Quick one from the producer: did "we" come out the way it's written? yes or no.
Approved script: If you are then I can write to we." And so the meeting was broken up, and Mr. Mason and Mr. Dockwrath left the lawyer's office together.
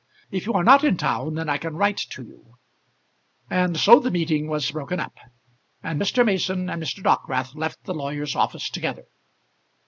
no